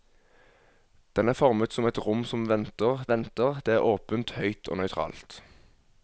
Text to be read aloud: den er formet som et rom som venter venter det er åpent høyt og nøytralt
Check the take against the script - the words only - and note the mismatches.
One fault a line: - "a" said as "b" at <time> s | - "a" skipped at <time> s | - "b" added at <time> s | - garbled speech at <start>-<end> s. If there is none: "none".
none